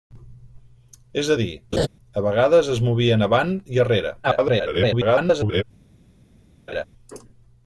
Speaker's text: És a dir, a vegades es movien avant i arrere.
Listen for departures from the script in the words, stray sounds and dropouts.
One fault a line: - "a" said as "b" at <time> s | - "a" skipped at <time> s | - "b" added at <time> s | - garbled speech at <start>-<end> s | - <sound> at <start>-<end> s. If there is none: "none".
- laugh at 1.7-1.9 s
- garbled speech at 4.2-5.6 s
- laugh at 6.7-6.8 s